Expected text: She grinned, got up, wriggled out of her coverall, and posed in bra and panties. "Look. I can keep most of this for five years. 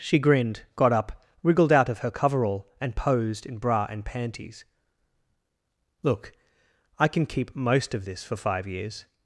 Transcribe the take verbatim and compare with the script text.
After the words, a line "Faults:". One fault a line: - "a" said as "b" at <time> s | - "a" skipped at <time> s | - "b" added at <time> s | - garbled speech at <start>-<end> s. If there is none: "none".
She grinned, got up, wriggled out of her coverall, and posed in bra and panties. "Look. I can keep most of this for five years.
Faults:
none